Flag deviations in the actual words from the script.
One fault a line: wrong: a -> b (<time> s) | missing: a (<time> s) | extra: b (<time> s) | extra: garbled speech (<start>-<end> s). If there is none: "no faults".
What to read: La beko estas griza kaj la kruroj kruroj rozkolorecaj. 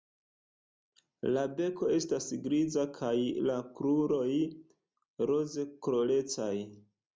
missing: kruroj (4.3 s)